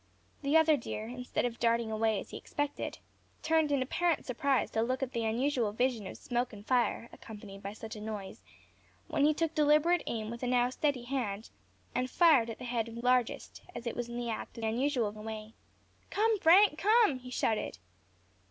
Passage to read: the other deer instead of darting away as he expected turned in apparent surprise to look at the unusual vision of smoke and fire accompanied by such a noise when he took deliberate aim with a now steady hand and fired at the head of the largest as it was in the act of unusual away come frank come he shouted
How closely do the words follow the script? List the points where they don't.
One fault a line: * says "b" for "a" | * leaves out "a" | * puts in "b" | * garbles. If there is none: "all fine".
all fine